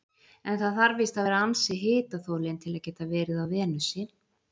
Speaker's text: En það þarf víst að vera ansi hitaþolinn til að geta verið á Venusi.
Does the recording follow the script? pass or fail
pass